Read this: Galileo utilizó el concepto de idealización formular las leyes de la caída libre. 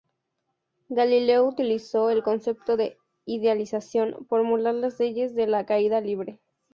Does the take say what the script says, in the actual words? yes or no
yes